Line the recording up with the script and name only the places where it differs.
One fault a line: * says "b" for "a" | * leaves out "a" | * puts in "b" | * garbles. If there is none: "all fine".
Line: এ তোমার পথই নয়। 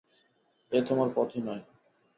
all fine